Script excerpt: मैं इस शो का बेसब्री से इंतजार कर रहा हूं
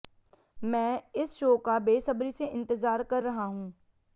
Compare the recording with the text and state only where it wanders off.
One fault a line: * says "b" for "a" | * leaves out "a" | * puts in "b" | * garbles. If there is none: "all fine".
all fine